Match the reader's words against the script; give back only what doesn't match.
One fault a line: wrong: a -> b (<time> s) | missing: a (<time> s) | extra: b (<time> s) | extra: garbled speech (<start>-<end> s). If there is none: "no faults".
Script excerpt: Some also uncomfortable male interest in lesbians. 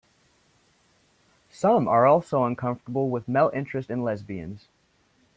extra: are (1.9 s)
extra: with (3.1 s)